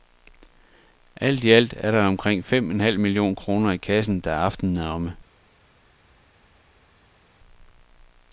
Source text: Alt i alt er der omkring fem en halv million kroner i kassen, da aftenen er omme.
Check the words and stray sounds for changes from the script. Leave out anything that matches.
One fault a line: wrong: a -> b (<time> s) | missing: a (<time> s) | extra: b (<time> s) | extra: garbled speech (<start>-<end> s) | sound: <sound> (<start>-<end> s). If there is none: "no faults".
no faults